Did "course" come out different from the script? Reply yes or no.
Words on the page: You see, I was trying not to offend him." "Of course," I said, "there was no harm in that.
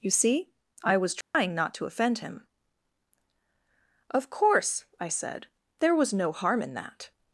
no